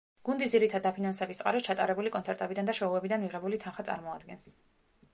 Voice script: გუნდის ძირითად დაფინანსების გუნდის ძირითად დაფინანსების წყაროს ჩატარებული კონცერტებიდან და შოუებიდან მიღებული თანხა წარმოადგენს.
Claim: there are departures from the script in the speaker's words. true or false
true